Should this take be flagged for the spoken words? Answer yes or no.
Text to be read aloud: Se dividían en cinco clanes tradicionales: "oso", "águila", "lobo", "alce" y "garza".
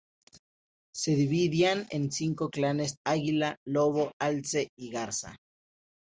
yes